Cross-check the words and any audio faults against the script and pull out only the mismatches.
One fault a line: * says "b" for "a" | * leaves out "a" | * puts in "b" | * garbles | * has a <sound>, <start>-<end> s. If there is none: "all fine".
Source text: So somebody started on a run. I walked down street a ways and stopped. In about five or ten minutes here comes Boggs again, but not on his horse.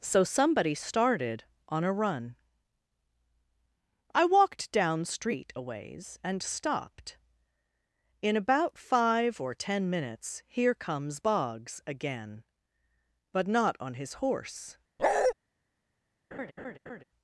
* has a bark, 15.0-15.3 s
* has a laugh, 16.3-17.0 s